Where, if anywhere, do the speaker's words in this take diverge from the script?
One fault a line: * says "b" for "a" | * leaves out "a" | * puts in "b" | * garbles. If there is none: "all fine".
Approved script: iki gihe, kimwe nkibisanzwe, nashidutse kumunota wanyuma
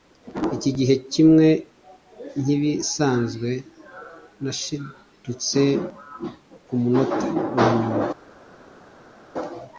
all fine